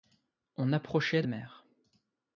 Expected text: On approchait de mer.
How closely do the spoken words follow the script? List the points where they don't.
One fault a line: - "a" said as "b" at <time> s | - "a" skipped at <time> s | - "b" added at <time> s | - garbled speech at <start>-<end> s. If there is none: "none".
none